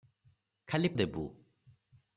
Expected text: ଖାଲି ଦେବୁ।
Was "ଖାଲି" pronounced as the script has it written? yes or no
yes